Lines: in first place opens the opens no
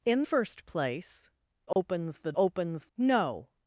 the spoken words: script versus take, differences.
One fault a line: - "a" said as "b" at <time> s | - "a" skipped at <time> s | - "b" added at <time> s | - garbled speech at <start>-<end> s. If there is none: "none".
none